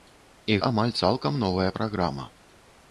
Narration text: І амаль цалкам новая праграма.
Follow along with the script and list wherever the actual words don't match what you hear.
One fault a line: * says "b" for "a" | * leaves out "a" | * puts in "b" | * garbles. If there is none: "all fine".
all fine